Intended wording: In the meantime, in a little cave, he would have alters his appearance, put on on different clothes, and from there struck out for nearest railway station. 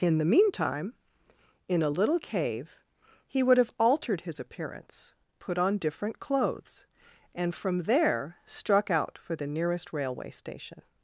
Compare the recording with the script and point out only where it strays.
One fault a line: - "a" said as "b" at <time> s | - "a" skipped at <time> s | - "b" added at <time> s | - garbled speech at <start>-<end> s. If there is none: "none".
- "alters" said as "altered" at 3.8 s
- "on" skipped at 5.8 s
- "the" added at 9.3 s